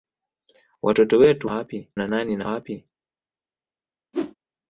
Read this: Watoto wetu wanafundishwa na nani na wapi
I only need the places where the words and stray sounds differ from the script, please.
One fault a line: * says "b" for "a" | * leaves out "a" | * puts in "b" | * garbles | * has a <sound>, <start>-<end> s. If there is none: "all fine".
* says "wapi" for "wanafundishwa"
* has a whoosh, 4.1-4.4 s